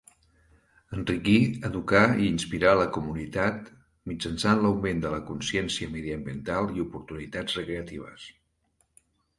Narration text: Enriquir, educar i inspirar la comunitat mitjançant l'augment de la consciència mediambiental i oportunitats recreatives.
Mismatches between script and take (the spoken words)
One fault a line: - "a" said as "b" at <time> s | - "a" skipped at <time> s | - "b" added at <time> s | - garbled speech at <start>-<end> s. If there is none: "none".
none